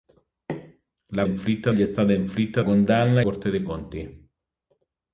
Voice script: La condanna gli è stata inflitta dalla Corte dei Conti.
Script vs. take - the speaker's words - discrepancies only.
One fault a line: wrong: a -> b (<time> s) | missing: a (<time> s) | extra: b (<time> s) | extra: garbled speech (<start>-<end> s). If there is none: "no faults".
wrong: condanna -> inflitta (1.2 s)
wrong: dalla -> condanna (2.6 s)